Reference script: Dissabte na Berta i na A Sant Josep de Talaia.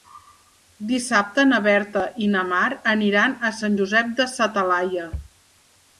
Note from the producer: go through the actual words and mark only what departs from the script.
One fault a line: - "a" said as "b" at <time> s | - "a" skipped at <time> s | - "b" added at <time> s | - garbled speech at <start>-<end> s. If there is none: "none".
- "Mar aniran" added at 2.5 s
- "sa" added at 4.3 s